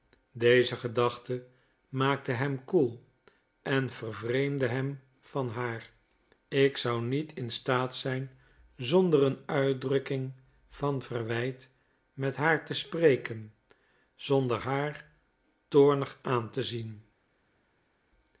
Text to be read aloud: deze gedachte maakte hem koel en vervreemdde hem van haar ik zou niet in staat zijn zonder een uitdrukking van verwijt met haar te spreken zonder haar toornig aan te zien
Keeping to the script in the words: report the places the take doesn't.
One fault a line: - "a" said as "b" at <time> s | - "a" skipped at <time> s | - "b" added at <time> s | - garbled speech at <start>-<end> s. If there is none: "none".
none